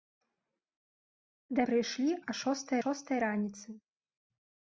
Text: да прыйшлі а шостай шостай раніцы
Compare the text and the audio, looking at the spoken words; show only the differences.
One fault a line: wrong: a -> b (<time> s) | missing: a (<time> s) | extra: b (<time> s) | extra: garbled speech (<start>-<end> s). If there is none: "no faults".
no faults